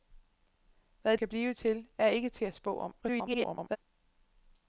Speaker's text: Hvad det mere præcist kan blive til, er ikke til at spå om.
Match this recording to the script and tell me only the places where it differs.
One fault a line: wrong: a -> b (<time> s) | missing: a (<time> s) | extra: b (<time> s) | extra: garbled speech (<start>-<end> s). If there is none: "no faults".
missing: det mere præcist (1.2 s)
extra: garbled speech (3.0-3.8 s)